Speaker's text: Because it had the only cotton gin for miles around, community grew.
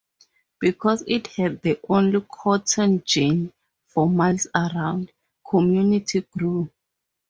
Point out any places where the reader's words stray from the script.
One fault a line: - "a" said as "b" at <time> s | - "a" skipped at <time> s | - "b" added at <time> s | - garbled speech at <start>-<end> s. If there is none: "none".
none